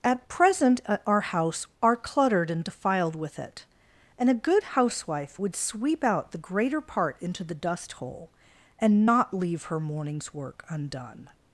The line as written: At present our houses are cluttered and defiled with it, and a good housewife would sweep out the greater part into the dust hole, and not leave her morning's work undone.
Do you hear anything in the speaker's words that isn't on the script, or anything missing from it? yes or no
yes